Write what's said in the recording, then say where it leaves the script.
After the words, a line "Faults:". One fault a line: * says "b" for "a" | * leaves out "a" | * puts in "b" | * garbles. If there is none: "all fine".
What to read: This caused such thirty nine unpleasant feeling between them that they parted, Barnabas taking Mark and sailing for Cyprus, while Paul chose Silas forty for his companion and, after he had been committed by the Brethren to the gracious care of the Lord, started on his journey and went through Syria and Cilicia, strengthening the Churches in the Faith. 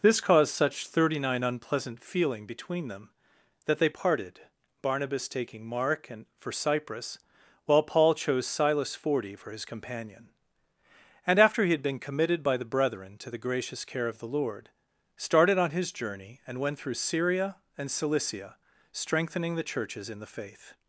This caused such thirty nine unpleasant feeling between them that they parted, Barnabas taking Mark and for Cyprus, while Paul chose Silas forty for his companion and, after he had been committed by the Brethren to the gracious care of the Lord, started on his journey and went through Syria and Cilicia, strengthening the Churches in the Faith.
Faults:
* leaves out "sailing"